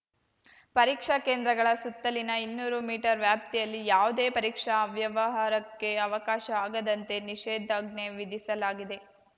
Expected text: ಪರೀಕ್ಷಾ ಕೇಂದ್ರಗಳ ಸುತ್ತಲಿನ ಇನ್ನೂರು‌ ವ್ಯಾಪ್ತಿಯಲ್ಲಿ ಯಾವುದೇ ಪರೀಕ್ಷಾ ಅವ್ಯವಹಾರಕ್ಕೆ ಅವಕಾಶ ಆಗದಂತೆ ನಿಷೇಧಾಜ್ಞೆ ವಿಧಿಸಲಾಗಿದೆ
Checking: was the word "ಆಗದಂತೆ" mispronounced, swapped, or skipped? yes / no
no